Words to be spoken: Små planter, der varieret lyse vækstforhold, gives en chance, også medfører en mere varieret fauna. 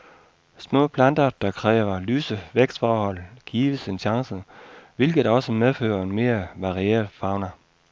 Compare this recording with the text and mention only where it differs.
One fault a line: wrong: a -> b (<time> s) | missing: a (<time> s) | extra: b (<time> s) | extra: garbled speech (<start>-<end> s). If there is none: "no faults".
wrong: varieret -> kræver (1.5 s)
extra: hvilket (5.0 s)